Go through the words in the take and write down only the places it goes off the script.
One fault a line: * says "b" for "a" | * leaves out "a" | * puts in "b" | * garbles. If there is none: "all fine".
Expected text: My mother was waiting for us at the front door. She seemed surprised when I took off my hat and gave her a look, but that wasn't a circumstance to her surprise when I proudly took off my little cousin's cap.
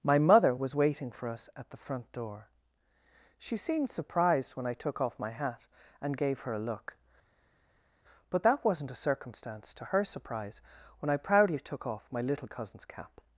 all fine